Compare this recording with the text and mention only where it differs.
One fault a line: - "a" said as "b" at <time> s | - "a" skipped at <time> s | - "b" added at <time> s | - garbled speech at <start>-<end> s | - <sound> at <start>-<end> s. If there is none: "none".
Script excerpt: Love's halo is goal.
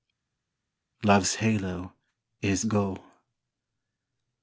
none